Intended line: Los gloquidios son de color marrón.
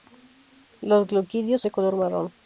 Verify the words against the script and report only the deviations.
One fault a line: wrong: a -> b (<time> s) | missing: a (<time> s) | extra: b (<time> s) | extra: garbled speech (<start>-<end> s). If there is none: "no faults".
missing: son (1.6 s)